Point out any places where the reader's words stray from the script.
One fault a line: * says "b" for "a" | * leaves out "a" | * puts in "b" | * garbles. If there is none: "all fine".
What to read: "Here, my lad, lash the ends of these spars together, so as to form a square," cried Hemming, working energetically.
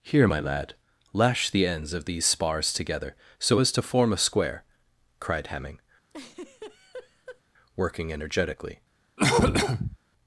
all fine